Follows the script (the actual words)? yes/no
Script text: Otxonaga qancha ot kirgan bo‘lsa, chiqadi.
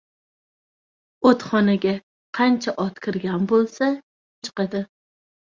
yes